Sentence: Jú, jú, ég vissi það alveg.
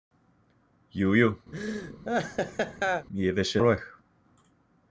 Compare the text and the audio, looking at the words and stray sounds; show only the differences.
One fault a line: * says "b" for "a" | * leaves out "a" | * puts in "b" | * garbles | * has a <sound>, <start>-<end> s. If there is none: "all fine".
* has a laugh, 1.5-3.1 s
* leaves out "það"